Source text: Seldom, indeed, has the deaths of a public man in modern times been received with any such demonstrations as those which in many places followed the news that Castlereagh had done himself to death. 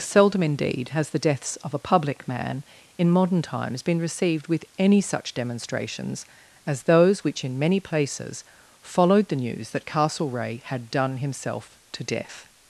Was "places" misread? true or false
false